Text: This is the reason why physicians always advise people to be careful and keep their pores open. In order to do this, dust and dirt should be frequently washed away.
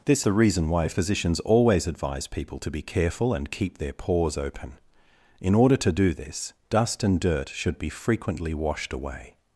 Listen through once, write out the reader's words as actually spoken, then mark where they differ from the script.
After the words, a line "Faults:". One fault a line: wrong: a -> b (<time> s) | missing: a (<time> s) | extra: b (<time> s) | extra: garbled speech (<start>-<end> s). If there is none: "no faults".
This the reason why physicians always advise people to be careful and keep their pores open. In order to do this, dust and dirt should be frequently washed away.
Faults:
missing: is (0.2 s)